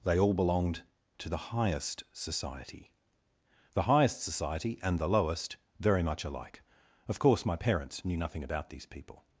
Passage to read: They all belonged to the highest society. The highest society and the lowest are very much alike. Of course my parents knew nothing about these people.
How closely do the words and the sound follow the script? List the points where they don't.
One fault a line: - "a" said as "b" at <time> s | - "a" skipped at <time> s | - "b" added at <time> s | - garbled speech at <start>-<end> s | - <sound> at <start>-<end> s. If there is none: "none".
- "are" skipped at 5.6 s